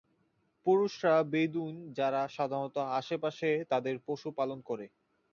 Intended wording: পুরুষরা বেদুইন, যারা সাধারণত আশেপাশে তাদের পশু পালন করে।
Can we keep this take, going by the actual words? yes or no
yes